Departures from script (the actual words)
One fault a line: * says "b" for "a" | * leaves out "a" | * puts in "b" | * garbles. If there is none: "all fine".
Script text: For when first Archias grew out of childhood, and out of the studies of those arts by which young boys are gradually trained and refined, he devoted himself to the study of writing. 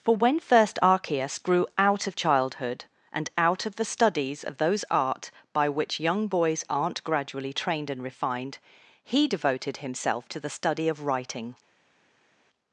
* says "art" for "arts"
* says "aren't" for "are"